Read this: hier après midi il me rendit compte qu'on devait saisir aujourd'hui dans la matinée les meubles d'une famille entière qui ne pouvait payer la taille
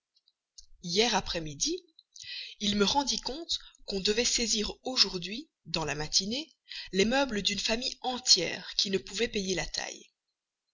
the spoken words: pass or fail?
pass